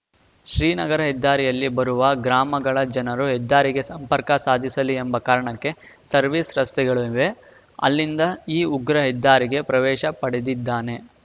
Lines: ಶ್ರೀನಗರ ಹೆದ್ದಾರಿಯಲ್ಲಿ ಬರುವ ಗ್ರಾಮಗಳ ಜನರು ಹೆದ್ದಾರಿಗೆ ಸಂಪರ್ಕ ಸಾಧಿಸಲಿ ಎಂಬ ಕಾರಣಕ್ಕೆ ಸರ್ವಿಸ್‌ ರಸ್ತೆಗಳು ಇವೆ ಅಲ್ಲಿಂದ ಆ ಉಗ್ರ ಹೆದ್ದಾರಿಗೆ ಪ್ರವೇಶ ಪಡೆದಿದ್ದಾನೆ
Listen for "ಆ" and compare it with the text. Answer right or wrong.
wrong